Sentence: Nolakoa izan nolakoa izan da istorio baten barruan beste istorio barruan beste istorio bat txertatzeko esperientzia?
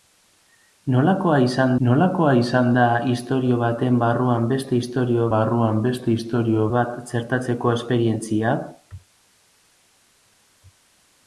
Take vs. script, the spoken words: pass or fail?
pass